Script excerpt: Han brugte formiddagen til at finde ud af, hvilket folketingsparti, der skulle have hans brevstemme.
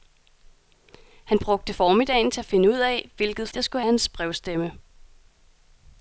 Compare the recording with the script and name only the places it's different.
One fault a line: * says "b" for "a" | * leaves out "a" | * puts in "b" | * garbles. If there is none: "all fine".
* leaves out "folketingsparti"
* leaves out "have"